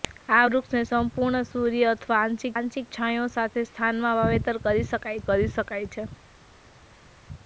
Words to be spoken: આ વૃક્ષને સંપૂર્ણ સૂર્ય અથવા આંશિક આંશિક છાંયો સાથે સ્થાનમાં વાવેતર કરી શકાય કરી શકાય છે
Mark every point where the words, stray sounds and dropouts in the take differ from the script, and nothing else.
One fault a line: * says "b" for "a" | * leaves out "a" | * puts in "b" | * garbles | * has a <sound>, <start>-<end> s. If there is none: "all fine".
all fine